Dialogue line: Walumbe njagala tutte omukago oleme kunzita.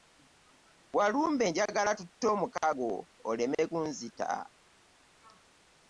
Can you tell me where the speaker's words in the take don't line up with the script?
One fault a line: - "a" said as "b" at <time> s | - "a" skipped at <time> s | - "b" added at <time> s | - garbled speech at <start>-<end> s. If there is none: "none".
none